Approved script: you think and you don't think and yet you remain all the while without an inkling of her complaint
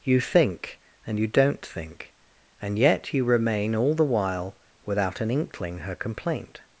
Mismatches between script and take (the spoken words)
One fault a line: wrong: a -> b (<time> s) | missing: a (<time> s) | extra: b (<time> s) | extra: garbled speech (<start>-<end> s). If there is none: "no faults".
missing: of (5.8 s)